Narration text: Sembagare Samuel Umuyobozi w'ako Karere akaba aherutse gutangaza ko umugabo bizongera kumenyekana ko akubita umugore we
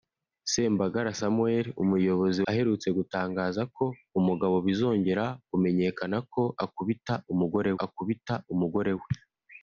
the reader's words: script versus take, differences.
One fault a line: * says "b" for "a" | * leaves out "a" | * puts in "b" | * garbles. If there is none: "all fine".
* leaves out "w'ako Karere akaba"
* puts in "akubita umugore"